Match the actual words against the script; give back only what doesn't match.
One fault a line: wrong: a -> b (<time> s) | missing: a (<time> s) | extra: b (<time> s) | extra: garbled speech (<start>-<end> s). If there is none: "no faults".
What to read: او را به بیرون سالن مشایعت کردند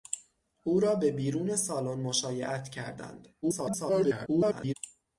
extra: garbled speech (3.4-4.7 s)